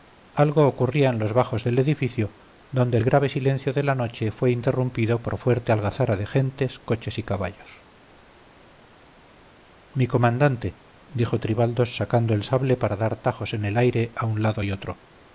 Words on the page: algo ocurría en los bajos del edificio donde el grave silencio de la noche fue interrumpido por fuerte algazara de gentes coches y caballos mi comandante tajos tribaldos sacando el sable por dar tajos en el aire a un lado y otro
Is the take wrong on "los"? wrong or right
right